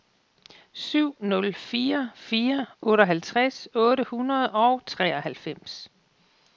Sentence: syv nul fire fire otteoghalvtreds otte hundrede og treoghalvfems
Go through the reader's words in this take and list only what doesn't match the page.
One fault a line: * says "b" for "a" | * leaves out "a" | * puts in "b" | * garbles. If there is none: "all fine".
all fine